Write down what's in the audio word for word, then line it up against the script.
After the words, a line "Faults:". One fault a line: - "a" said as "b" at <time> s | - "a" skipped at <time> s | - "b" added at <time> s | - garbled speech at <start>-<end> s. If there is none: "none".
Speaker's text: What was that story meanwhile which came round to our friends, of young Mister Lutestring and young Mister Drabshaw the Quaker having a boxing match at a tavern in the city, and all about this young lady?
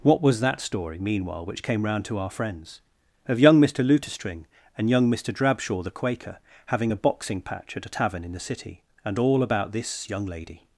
What was that story meanwhile which came round to our friends, of young Mister Lutestring and young Mister Drabshaw the Quaker having a boxing patch at a tavern in the city, and all about this young lady?
Faults:
- "match" said as "patch" at 7.4 s